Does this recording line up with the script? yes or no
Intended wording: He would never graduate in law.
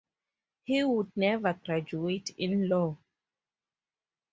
yes